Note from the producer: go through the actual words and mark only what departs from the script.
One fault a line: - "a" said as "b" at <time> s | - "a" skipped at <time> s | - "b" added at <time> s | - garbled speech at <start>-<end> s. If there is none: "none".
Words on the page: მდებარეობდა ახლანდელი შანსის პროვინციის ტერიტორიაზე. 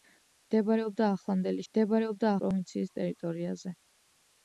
- "შანსის" said as "მდებარეობდა" at 1.7 s